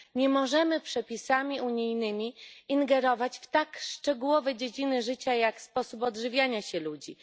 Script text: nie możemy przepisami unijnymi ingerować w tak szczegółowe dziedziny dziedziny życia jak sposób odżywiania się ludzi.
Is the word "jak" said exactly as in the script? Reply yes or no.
yes